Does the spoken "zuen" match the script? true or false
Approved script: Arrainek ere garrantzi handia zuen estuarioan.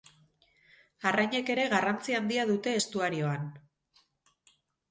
false